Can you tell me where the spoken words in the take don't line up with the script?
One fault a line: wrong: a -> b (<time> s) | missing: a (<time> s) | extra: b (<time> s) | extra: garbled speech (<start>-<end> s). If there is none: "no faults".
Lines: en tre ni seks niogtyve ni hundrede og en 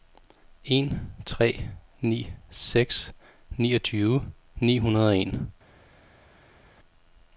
no faults